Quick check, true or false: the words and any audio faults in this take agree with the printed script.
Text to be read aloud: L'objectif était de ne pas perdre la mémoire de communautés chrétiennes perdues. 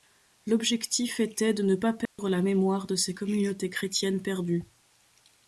false